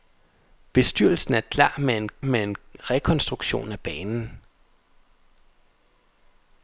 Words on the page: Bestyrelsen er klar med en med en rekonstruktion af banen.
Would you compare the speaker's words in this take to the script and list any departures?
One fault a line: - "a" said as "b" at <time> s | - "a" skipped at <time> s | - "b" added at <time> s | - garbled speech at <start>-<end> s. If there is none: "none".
none